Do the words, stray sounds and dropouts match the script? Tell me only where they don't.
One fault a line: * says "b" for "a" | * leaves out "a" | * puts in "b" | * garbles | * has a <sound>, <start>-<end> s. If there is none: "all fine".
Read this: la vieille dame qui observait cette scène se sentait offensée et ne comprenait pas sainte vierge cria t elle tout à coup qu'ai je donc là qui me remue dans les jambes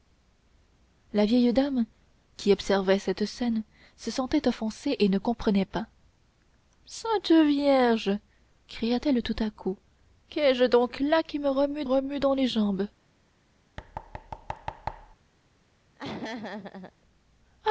* puts in "remue"
* has a thud, 13.8-15.2 s
* has a laugh, 16.0-16.9 s